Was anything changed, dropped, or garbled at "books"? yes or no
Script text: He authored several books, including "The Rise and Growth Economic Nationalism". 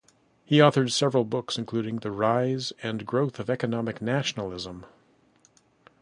no